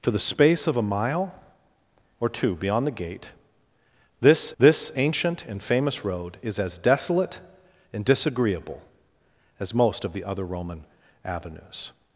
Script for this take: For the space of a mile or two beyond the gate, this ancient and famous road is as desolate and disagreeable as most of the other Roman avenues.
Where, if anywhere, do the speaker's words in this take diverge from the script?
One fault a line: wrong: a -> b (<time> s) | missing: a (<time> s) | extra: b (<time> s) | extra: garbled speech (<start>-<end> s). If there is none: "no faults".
extra: this (4.6 s)